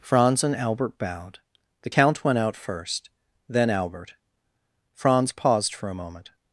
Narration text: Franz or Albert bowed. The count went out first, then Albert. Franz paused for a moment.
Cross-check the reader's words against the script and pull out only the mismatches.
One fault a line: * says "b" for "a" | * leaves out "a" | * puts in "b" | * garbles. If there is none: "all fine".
* says "and" for "or"